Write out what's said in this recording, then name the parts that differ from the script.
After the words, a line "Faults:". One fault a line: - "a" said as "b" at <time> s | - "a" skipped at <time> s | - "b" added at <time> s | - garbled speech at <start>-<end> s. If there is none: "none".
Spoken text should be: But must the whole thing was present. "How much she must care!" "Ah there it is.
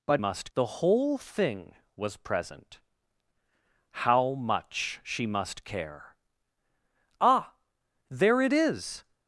But must the whole thing was present. "How much she must care!" "Ah there it is.
Faults:
none